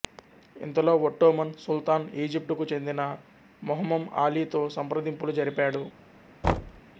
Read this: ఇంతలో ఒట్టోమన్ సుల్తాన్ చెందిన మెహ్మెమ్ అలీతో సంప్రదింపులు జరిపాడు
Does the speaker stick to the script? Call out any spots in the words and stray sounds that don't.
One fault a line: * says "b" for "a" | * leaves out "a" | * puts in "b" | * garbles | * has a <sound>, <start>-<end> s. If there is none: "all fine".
* puts in "ఈజిప్టుకు"
* has a thud, 6.4-6.8 s